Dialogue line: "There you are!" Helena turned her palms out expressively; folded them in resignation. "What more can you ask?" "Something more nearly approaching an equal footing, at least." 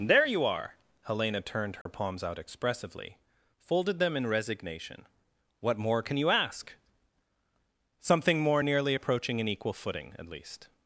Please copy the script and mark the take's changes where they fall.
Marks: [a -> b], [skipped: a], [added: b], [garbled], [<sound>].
"There you are!" Helena turned her [dropout] palms out expressively; folded them in resignation. "What more can you ask?" "Something more nearly approaching an equal footing, at least."